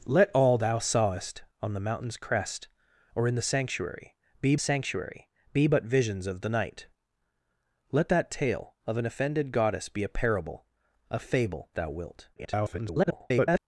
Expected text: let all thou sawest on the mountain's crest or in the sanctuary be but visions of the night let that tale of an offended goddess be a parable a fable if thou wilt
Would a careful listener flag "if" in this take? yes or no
yes